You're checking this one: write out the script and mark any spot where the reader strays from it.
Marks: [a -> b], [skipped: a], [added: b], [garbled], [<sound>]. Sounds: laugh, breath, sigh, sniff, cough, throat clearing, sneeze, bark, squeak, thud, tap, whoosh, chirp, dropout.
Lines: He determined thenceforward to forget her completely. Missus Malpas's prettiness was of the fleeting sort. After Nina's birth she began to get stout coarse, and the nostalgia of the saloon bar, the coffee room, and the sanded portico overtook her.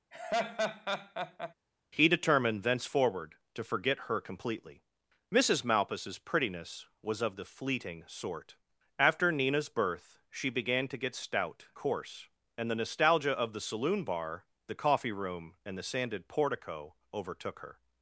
[laugh] He determined thenceforward to forget her completely. Missus Malpas's prettiness was of the fleeting sort. After Nina's birth she began to get stout coarse, and the nostalgia of the saloon bar, the coffee room, and the sanded portico overtook her.